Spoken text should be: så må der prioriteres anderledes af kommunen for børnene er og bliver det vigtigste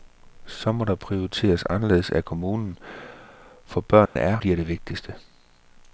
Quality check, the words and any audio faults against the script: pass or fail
fail